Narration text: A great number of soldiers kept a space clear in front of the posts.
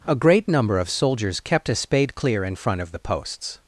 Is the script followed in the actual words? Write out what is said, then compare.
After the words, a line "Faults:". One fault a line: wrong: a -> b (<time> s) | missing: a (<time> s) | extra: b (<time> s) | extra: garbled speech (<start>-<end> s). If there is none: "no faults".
A great number of soldiers kept a spade clear in front of the posts.
Faults:
wrong: space -> spade (1.8 s)